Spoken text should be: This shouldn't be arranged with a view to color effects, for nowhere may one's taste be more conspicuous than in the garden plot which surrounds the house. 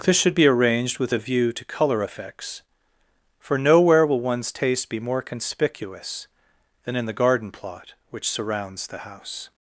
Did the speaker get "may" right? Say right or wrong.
wrong